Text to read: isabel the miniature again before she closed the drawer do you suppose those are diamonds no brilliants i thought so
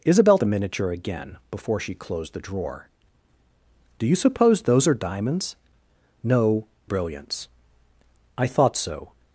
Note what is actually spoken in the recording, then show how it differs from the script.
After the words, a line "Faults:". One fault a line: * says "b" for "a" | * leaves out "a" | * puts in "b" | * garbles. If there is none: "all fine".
isabel the miniature again before she closed the drawer do you suppose those are diamonds no brilliants i thought so
Faults:
all fine